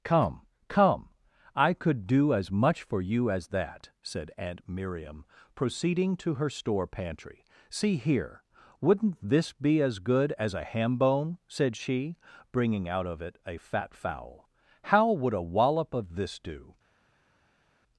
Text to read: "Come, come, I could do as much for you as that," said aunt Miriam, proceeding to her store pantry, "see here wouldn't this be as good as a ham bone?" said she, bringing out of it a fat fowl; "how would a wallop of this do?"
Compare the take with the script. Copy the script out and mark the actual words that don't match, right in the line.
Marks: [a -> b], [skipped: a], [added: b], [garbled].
"Come, come, I could do as much for you as that," said aunt Miriam, proceeding to her store pantry, "see here wouldn't this be as good as a ham bone?" said she, bringing out of it a fat fowl; "how would a wallop of this do?"